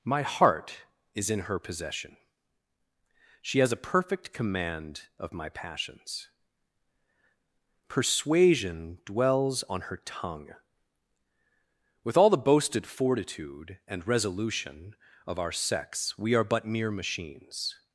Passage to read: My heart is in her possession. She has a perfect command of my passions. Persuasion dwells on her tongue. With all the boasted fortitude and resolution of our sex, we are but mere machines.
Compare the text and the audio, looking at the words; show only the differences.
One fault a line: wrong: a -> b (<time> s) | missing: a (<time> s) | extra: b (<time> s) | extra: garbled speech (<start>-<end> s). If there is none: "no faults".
no faults